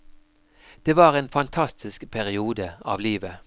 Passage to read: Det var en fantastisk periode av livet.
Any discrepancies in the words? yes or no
no